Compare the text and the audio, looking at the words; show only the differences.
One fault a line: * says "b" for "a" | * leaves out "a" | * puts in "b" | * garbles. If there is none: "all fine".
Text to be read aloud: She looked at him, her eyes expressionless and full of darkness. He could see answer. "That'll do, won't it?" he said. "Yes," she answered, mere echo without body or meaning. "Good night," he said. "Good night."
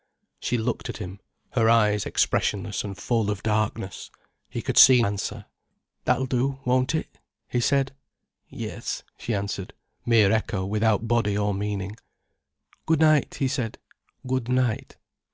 all fine